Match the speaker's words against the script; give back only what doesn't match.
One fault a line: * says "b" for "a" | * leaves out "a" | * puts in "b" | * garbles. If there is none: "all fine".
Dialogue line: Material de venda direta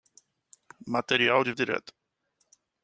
* leaves out "venda"